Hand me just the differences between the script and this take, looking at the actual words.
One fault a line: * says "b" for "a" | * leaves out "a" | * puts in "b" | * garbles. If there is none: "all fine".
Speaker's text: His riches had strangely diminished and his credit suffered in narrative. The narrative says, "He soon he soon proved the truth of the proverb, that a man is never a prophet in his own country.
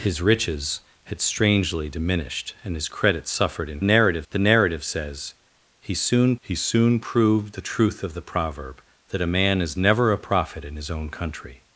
all fine